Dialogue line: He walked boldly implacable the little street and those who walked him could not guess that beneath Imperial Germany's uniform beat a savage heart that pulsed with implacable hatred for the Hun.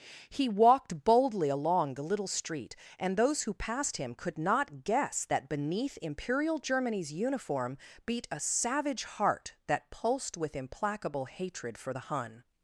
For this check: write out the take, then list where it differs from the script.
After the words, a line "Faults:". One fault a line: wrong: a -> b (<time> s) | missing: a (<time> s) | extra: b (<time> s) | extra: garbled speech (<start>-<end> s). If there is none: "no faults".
He walked boldly along the little street and those who passed him could not guess that beneath Imperial Germany's uniform beat a savage heart that pulsed with implacable hatred for the Hun.
Faults:
wrong: implacable -> along (1.5 s)
wrong: walked -> passed (3.5 s)